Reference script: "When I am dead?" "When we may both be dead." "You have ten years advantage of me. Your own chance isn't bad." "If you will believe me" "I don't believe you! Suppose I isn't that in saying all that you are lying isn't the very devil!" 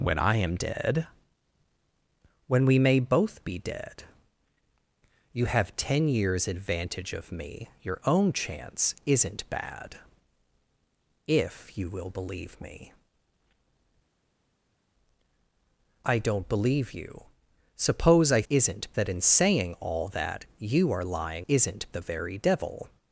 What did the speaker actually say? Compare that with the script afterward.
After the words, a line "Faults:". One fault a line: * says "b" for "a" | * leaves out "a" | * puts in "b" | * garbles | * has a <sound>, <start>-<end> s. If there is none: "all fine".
"When I am dead?" "When we may both be dead." "You have ten years advantage of me. Your own chance isn't bad." "If you will believe me" "I don't believe you! Suppose I isn't that in saying all that you are lying isn't the very devil!"
Faults:
all fine